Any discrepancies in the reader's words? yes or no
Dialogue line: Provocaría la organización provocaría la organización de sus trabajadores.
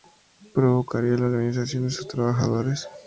yes